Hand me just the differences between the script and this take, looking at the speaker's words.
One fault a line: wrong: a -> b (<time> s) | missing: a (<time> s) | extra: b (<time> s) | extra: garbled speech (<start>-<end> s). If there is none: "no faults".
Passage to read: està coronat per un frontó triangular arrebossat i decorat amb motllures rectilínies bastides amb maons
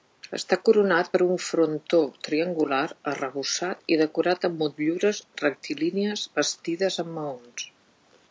no faults